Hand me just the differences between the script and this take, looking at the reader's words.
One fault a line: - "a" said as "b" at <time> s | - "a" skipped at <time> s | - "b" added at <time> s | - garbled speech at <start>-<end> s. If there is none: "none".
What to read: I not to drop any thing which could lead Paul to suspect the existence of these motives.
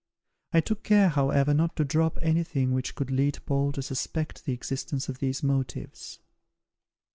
- "took care however" added at 0.6 s